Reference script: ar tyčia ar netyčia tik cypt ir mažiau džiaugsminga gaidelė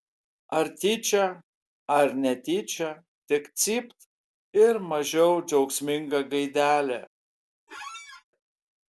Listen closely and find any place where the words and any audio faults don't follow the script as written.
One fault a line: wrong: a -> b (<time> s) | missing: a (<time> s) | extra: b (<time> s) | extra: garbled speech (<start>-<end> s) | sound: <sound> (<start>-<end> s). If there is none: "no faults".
sound: squeak (7.7-8.2 s)